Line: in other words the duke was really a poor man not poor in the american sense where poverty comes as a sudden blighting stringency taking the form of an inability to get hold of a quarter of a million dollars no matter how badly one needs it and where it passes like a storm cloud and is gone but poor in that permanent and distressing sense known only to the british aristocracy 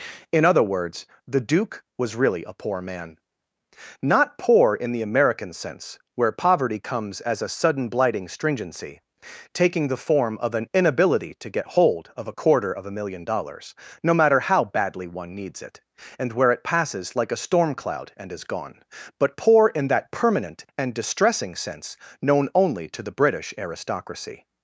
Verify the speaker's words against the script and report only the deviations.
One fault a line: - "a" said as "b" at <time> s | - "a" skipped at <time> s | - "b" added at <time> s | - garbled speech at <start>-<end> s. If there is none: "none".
none